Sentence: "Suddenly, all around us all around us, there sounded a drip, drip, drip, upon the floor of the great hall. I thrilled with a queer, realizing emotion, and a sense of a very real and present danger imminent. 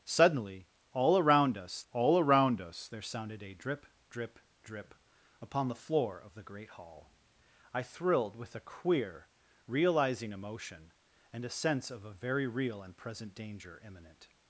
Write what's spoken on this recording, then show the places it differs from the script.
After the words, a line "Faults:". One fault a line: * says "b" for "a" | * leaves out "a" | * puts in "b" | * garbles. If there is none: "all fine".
"Suddenly, all around us all around us, there sounded a drip, drip, drip, upon the floor of the great hall. I thrilled with a queer, realizing emotion, and a sense of a very real and present danger imminent.
Faults:
all fine